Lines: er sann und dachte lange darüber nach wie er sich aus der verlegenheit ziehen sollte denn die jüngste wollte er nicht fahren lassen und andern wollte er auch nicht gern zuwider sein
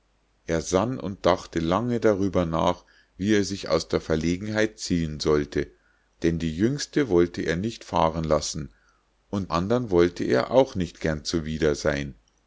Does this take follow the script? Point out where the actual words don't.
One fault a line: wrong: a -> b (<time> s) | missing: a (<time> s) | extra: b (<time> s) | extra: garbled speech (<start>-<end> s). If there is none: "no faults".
no faults